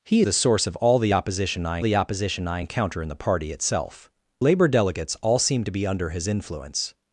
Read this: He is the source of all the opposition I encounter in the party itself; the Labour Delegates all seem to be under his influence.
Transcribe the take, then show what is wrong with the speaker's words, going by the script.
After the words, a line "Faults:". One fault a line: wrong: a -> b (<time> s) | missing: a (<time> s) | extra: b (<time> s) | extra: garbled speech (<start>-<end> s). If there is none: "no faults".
He the source of all the opposition I the opposition I encounter in the party itself; Labour Delegates all seem to be under his influence.
Faults:
missing: is (0.2 s)
extra: the opposition I (1.8 s)
missing: the (4.1 s)